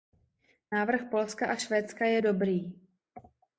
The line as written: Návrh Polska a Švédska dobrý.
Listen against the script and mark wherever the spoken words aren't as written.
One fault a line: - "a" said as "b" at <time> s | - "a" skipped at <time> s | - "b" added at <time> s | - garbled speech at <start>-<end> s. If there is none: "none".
- "je" added at 2.0 s